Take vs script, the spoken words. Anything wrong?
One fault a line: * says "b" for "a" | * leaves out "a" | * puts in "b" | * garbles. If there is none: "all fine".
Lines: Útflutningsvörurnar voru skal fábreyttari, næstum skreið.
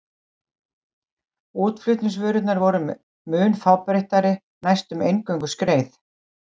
* says "mun" for "skal"
* puts in "eingöngu"